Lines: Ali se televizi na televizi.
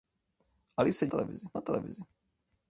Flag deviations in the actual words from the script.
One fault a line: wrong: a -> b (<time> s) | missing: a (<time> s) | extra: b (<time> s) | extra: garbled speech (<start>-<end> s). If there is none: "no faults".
no faults